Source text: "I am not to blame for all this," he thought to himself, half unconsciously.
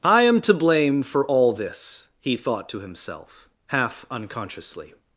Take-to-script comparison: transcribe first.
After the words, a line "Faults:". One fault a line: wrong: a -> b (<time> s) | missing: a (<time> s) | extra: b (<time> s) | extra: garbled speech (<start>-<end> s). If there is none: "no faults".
"I am to blame for all this," he thought to himself, half unconsciously.
Faults:
missing: not (0.4 s)